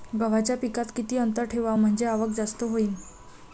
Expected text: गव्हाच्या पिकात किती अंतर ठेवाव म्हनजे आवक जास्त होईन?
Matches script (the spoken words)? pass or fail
pass